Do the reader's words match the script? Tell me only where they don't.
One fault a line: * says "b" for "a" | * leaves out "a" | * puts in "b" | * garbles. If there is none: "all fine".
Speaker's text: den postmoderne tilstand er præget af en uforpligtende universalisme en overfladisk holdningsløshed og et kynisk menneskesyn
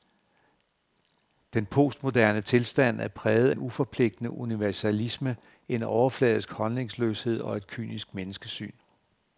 * leaves out "af"